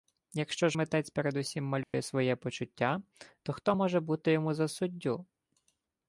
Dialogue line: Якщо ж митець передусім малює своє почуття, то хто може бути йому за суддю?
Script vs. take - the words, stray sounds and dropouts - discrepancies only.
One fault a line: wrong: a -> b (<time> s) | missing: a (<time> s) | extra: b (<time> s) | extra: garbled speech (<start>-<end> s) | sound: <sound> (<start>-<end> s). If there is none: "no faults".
sound: dropout (1.8-1.9 s)